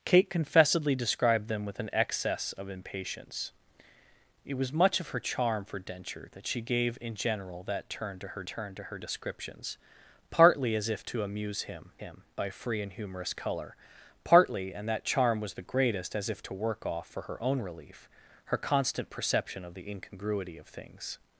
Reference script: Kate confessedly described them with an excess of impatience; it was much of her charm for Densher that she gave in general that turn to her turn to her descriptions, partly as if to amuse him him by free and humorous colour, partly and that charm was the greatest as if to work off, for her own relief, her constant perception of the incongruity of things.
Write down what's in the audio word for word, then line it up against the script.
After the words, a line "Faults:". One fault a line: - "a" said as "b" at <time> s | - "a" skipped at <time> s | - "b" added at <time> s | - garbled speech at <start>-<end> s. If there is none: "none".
Kate confessedly described them with an excess of impatience; it was much of her charm for Densher that she gave in general that turn to her turn to her descriptions, partly as if to amuse him him by free and humorous colour, partly and that charm was the greatest as if to work off, for her own relief, her constant perception of the incongruity of things.
Faults:
none